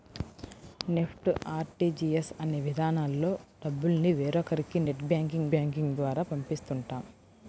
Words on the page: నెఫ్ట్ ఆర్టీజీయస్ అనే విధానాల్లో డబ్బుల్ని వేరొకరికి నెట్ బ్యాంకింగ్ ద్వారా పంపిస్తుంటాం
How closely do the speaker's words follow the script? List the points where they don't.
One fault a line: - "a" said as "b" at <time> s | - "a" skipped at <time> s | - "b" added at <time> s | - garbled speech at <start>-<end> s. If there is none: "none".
- "బ్యాంకింగ్" added at 5.5 s